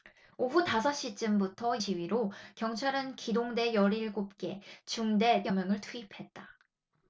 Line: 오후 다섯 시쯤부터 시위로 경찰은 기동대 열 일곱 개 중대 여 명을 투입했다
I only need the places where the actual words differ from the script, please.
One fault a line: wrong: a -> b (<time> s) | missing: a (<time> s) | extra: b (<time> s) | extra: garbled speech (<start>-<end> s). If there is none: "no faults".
no faults